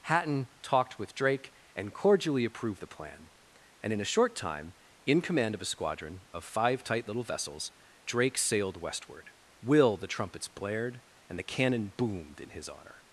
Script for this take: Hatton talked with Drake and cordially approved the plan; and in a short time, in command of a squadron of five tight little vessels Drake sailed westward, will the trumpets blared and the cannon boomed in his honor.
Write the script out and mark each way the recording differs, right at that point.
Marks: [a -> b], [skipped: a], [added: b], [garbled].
Hatton talked with Drake and cordially approved the plan; and in a short time, in command of a squadron of five tight little vessels Drake sailed westward, will the trumpets blared and the cannon boomed in his honor.